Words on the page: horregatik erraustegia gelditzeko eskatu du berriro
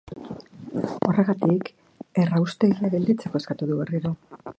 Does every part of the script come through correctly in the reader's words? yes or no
yes